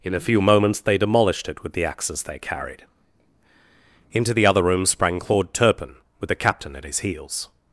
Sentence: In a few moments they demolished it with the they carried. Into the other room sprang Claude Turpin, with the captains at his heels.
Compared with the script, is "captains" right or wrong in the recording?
wrong